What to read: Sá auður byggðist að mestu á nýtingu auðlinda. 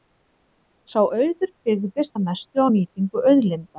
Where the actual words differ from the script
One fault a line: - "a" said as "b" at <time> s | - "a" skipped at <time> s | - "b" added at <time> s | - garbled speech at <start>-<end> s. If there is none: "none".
none